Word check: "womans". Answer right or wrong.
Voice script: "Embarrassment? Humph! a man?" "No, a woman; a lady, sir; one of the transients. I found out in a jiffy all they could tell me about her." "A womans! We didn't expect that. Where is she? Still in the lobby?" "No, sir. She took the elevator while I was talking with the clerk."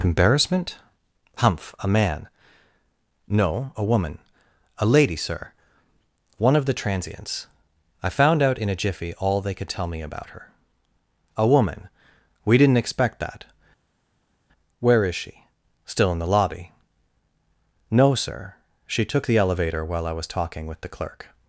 wrong